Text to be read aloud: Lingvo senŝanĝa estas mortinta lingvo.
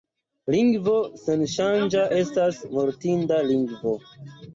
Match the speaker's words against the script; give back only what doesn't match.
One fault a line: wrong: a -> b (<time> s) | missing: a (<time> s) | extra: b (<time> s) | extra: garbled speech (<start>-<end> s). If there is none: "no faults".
no faults